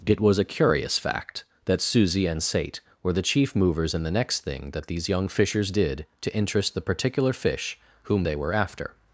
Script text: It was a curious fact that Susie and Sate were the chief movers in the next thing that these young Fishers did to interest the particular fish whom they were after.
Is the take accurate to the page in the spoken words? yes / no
yes